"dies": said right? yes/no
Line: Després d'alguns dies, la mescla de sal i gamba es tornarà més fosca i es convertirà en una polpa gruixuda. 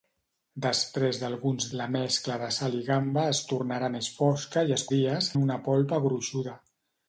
no